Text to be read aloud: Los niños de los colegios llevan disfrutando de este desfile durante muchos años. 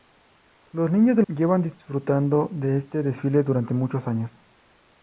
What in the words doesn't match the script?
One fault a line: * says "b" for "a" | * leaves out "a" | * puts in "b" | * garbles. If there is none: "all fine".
* leaves out "los colegios"